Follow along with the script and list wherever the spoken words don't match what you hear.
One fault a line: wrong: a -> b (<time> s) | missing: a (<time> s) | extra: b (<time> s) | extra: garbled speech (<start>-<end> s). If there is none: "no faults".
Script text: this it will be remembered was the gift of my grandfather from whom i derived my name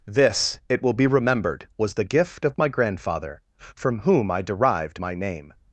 no faults